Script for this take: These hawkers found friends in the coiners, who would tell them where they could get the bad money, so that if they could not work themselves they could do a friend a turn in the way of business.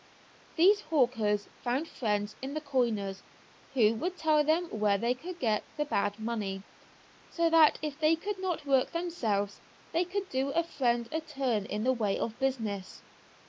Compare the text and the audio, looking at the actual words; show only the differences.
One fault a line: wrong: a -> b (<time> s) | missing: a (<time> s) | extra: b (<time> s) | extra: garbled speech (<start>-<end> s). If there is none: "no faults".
no faults